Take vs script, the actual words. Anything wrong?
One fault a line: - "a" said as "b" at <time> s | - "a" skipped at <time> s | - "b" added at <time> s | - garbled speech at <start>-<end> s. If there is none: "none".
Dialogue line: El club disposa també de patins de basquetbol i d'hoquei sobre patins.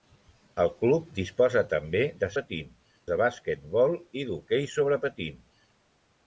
none